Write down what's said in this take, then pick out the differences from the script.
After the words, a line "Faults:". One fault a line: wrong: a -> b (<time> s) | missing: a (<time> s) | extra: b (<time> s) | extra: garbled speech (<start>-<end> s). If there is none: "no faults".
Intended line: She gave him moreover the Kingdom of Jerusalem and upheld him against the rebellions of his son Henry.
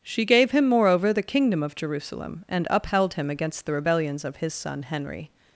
She gave him moreover the Kingdom of Jerusalem and upheld him against the rebellions of his son Henry.
Faults:
no faults